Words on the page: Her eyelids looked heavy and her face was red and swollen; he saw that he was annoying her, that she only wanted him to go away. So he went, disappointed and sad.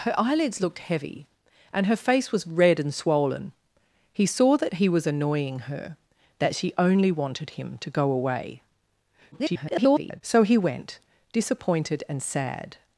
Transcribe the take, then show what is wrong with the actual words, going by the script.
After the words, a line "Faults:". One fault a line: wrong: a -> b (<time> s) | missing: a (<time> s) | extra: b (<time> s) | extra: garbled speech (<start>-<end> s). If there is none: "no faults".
Her eyelids looked heavy and her face was red and swollen; he saw that he was annoying her, that she only wanted him to go away. [garbled] So he went, disappointed and sad.
Faults:
extra: garbled speech (9.3-10.2 s)